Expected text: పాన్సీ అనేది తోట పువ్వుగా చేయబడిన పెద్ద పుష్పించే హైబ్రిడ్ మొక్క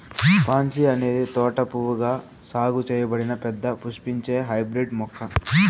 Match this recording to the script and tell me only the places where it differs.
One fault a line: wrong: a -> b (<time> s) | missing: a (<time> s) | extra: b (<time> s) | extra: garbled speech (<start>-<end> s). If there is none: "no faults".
extra: సాగు (2.5 s)